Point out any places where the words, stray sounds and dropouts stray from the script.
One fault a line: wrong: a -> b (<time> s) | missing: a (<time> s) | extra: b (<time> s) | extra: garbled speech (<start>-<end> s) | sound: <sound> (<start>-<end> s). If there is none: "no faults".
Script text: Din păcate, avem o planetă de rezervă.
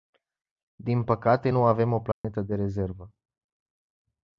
extra: nu (1.5 s)
sound: dropout (2.1-2.2 s)